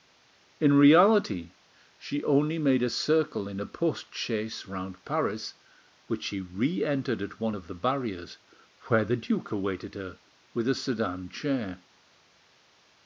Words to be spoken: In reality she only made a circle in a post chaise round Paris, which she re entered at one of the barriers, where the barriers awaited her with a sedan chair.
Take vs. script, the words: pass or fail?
fail